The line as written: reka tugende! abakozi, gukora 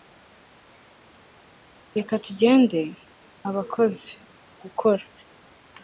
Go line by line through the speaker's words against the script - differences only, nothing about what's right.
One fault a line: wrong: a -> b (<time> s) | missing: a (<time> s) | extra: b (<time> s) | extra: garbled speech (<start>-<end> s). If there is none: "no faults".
no faults